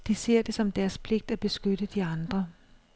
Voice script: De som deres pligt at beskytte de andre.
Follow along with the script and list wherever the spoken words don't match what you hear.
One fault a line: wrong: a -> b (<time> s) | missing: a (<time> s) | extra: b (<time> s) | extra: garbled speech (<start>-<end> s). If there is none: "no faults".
extra: ser det (0.1 s)